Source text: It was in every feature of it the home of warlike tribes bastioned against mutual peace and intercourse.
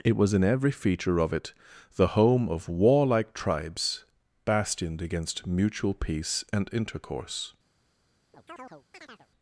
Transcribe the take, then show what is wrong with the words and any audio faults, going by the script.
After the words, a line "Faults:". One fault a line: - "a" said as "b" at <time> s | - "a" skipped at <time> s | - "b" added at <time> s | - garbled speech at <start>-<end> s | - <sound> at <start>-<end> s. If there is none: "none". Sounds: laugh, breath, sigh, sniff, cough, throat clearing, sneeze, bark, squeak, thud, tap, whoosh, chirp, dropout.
It was in every feature of it the home of warlike tribes bastioned against mutual peace and intercourse.
Faults:
- chirp at 8.3-9.3 s